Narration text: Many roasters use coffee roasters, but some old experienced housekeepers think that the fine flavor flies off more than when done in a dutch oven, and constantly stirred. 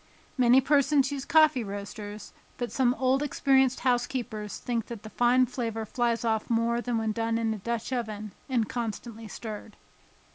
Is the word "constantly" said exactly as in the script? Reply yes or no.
yes